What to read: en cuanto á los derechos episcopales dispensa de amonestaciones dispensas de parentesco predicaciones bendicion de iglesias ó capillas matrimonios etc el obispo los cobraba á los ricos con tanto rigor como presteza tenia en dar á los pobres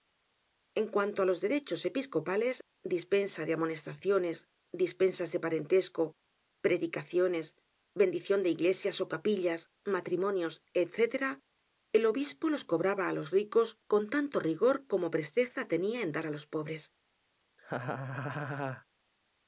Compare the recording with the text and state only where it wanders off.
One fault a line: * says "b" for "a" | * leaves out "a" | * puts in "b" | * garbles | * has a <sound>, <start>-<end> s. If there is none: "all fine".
* has a laugh, 17.6-18.8 s